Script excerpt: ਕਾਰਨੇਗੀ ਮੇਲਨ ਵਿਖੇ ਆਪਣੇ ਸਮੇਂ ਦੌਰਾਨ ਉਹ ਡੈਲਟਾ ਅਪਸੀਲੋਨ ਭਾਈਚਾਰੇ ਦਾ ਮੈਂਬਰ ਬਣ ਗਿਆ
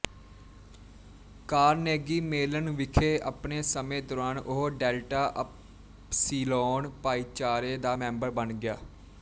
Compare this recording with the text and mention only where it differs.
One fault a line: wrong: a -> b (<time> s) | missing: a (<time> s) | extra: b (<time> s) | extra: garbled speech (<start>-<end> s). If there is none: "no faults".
no faults